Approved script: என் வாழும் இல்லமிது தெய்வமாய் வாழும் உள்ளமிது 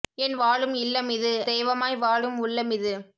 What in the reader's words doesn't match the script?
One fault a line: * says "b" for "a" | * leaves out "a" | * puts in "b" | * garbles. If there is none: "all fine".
all fine